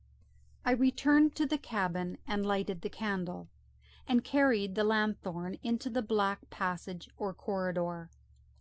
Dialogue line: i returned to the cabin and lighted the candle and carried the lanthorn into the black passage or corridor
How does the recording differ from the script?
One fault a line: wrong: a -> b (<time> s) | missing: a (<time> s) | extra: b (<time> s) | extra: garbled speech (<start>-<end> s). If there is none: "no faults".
no faults